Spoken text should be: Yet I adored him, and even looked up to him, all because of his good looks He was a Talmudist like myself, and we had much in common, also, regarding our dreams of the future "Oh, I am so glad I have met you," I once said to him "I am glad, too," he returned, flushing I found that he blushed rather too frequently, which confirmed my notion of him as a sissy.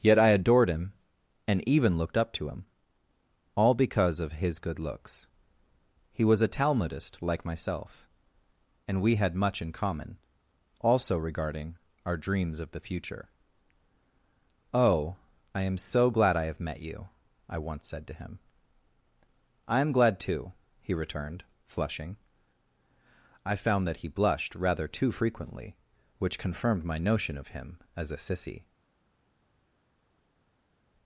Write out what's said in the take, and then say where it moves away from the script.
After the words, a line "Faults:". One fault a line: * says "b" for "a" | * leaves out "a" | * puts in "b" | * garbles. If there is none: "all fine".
Yet I adored him, and even looked up to him, all because of his good looks He was a Talmudist like myself, and we had much in common, also, regarding our dreams of the future "Oh, I am so glad I have met you," I once said to him "I am glad, too," he returned, flushing I found that he blushed rather too frequently, which confirmed my notion of him as a sissy.
Faults:
all fine